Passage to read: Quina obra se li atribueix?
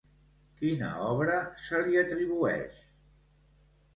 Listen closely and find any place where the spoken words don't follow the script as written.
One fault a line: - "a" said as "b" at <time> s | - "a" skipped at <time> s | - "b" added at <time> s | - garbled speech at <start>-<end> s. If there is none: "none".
none